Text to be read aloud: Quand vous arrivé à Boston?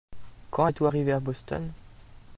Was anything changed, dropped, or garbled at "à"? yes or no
no